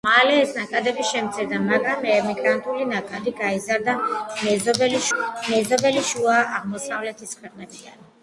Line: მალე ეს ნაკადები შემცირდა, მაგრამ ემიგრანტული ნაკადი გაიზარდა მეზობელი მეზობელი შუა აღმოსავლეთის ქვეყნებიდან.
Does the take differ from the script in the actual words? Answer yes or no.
no